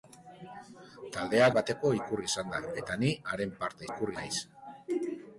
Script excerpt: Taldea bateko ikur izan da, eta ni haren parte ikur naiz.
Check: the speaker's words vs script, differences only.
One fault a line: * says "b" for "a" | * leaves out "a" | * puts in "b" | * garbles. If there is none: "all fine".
all fine